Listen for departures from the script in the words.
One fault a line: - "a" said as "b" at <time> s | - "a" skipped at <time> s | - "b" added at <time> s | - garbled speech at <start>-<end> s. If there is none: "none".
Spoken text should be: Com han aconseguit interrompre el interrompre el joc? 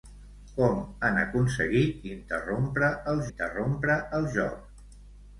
none